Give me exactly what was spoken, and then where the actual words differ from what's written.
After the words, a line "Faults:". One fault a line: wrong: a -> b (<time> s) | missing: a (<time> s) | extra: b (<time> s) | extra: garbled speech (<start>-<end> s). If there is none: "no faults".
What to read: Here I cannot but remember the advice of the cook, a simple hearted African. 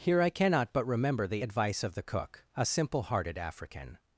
Here I cannot but remember the advice of the cook, a simple hearted African.
Faults:
no faults